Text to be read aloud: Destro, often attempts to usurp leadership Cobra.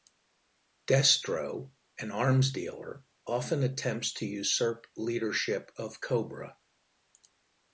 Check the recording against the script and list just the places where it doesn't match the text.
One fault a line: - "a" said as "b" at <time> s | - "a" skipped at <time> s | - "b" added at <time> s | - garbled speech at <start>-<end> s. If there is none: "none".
- "an arms dealer" added at 2.0 s
- "of" added at 5.8 s